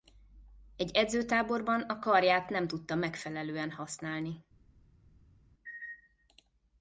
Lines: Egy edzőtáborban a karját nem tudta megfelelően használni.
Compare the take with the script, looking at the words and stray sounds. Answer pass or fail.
pass